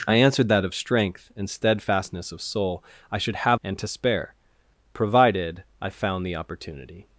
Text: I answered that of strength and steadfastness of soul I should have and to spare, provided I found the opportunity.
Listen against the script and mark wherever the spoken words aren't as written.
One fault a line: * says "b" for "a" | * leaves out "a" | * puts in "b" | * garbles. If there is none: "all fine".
all fine